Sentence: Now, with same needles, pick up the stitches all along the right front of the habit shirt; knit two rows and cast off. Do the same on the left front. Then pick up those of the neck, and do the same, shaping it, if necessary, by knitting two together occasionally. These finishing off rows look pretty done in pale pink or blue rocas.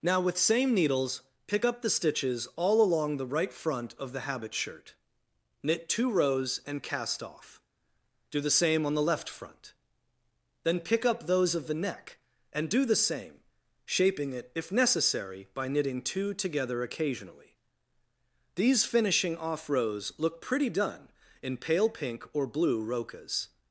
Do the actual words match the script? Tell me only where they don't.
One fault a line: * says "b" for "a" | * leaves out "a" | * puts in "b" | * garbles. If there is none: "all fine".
all fine